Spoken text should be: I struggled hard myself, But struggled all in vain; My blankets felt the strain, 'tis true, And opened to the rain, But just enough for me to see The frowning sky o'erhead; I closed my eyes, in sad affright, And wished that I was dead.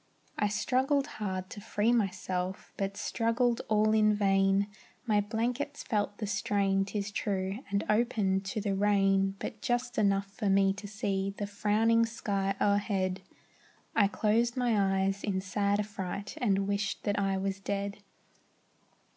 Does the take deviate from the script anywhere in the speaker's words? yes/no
yes